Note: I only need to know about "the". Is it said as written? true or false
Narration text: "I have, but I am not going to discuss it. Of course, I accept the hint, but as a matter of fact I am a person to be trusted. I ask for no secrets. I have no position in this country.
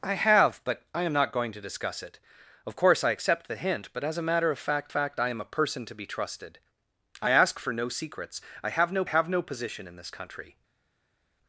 true